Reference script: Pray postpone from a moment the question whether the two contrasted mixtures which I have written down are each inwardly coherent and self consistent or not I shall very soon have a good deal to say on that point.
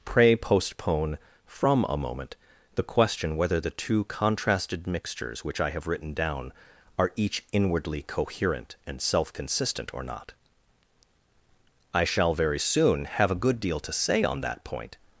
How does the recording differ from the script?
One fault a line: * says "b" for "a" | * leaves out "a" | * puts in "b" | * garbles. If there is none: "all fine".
all fine